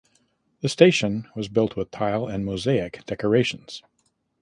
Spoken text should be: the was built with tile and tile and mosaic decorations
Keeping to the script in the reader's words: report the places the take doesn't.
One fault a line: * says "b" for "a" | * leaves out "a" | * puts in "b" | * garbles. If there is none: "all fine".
* puts in "station"
* leaves out "tile and"